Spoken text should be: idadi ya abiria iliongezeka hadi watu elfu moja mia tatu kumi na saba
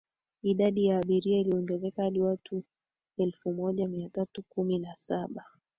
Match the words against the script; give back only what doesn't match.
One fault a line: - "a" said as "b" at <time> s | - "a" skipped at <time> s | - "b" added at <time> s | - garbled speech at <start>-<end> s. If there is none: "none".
none